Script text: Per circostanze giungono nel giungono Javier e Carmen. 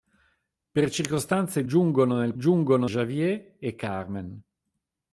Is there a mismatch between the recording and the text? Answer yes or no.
no